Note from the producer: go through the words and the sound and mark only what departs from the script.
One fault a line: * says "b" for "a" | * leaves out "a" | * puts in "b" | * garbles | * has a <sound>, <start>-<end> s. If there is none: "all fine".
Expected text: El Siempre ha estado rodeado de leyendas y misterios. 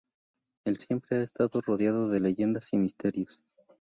all fine